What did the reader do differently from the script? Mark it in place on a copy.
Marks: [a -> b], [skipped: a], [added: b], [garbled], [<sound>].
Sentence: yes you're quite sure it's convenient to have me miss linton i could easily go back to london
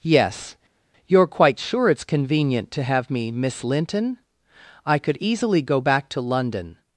yes you're quite sure it's convenient to have me miss linton i could easily go back to london